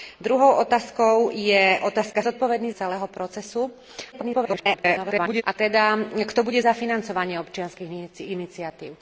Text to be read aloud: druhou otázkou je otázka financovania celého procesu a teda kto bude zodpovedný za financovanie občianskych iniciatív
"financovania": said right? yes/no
no